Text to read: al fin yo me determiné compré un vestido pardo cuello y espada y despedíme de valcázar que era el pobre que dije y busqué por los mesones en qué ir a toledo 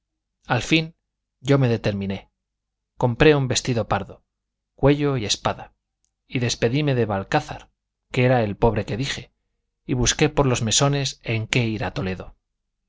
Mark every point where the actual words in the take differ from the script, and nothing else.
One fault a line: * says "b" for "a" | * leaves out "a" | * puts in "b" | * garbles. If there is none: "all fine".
all fine